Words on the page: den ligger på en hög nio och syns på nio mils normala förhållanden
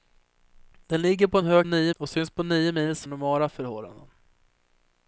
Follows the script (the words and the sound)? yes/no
yes